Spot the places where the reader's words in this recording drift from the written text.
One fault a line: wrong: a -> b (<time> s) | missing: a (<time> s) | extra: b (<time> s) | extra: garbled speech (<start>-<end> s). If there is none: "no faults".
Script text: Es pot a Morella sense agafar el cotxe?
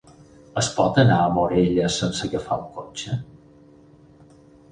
extra: anar (1.0 s)